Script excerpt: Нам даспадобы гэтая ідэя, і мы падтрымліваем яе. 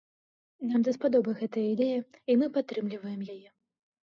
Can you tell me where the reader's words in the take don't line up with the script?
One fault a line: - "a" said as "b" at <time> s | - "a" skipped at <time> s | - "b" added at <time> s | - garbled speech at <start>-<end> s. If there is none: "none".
none